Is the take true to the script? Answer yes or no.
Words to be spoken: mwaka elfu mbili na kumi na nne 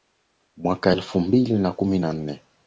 yes